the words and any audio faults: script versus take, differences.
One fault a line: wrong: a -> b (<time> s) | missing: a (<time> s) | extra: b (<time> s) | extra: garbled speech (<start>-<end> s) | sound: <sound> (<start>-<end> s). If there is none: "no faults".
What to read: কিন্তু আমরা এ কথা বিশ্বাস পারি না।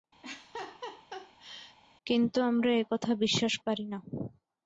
sound: laugh (0.2-1.8 s)